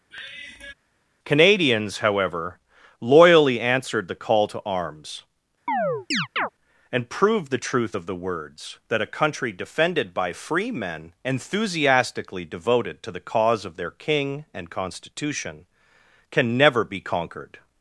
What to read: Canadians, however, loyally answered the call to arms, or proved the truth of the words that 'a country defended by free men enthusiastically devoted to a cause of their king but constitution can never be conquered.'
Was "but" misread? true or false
true